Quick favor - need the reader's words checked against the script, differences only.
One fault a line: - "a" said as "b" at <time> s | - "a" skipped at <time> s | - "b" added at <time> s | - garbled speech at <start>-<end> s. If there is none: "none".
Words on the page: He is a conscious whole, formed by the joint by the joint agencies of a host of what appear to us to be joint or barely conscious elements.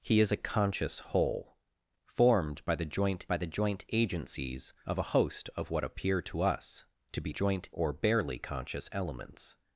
none